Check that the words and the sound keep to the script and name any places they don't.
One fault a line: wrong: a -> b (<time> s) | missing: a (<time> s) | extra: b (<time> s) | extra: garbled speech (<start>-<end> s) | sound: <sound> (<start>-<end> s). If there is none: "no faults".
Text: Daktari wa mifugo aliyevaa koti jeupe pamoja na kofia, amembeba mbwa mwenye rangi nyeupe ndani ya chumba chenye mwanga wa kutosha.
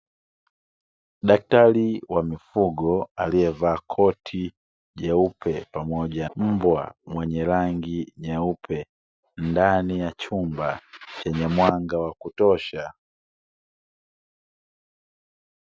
missing: na kofia amembeba (6.3 s)